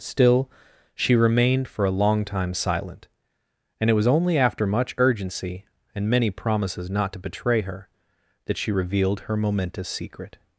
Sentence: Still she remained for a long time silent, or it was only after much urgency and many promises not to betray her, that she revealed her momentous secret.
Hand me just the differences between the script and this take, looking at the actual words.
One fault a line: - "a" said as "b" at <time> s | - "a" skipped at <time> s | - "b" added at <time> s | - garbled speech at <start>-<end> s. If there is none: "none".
- "or" said as "and" at 3.8 s